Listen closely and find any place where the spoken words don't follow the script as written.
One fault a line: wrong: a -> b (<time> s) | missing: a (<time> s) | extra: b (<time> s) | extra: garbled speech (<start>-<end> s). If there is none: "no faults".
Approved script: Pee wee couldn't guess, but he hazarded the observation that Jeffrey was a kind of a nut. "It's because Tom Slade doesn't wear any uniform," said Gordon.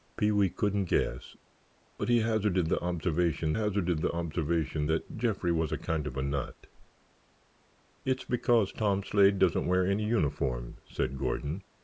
extra: hazarded the observation (3.5 s)